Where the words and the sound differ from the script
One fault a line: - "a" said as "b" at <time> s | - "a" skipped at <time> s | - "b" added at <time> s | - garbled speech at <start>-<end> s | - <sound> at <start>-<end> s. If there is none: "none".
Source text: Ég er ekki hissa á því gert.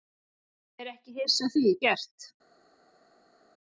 none